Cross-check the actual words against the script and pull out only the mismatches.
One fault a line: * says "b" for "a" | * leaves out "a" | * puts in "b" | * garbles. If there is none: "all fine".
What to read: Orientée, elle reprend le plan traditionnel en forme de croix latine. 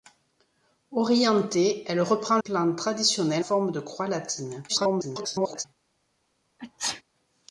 * leaves out "le"
* leaves out "en"
* garbles